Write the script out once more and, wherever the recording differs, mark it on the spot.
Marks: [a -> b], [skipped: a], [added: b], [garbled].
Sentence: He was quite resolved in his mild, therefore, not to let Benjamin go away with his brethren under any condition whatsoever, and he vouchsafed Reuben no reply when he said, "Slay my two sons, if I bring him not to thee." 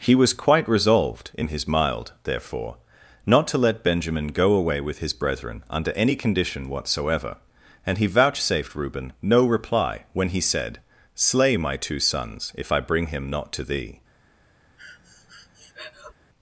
He was quite resolved in his mild, therefore, not to let Benjamin go away with his brethren under any condition whatsoever, and he vouchsafed Reuben no reply when he said, "Slay my two sons, if I bring him not to thee."